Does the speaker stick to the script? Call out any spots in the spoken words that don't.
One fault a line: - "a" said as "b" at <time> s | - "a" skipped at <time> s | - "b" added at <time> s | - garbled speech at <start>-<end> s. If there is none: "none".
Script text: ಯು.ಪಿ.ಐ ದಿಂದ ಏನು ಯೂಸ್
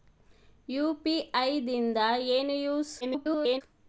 - garbled speech at 3.0-3.6 s